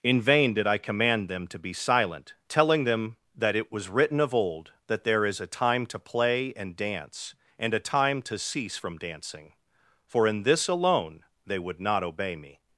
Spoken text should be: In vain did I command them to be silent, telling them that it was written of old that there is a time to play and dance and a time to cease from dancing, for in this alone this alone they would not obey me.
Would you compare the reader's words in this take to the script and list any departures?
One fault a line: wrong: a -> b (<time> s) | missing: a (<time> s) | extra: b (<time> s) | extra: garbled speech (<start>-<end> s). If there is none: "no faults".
missing: this alone (11.2 s)